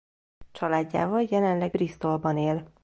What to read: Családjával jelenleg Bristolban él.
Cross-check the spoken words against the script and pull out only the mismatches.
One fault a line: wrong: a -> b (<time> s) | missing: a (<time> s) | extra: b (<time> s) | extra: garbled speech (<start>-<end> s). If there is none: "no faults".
no faults